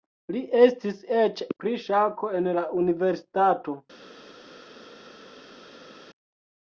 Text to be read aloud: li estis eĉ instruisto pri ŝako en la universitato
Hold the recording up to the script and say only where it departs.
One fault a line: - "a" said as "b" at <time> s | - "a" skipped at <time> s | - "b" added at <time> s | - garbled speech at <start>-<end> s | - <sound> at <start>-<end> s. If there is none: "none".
- "instruisto" skipped at 1.4 s